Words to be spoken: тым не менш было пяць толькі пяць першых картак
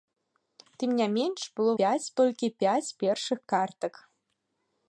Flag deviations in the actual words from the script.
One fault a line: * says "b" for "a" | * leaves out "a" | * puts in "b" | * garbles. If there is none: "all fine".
all fine